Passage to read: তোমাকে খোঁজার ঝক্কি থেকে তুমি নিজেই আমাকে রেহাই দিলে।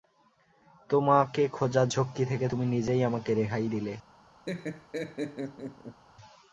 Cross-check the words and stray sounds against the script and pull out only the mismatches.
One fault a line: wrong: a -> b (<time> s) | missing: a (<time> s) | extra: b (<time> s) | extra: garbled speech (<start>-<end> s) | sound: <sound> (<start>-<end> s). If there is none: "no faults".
sound: laugh (4.5-6.0 s)